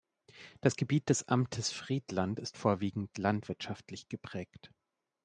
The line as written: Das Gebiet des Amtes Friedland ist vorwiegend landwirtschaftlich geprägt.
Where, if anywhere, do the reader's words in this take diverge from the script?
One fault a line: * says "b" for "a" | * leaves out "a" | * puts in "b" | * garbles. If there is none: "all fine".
all fine